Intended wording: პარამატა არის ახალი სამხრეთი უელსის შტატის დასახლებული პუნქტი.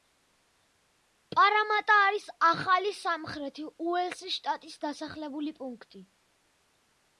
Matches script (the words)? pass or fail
pass